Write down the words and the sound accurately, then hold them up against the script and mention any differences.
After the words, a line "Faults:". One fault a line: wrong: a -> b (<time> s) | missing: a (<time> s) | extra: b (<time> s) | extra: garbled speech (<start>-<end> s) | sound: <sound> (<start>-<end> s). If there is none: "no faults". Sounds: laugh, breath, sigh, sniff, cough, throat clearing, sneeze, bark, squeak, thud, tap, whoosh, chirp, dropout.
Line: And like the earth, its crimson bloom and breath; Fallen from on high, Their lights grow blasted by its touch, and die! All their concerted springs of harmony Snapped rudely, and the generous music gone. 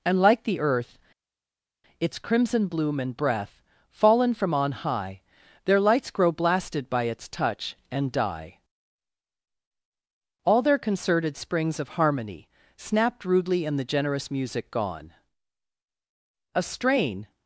And like the earth, its crimson bloom and breath; Fallen from on high, Their lights grow blasted by its touch, and die! All their concerted springs of harmony Snapped rudely, and the generous music gone. A strain
Faults:
extra: A strain (16.5 s)